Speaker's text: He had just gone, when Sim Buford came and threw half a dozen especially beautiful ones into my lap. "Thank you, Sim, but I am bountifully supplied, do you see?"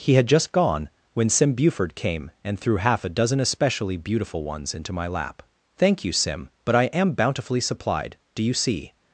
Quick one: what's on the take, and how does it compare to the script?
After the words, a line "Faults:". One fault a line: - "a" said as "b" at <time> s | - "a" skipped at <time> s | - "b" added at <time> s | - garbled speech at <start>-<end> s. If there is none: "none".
He had just gone, when Sim Buford came and threw half a dozen especially beautiful ones into my lap. "Thank you, Sim, but I am bountifully supplied, do you see?"
Faults:
none